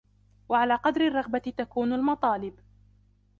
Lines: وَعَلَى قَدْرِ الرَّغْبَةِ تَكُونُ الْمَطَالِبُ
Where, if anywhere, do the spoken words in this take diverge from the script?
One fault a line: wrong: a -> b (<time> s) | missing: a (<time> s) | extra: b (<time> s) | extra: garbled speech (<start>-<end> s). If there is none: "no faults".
no faults